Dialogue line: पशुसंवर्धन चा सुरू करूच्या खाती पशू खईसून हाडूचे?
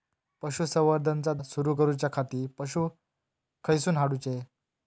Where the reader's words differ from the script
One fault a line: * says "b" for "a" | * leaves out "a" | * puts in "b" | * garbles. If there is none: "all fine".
all fine